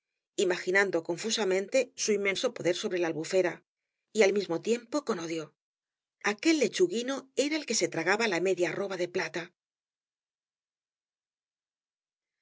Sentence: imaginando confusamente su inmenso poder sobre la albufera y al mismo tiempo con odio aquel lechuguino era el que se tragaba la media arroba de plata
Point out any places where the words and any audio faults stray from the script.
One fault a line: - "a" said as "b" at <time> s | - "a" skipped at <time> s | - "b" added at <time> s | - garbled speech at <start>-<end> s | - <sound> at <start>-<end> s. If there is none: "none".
none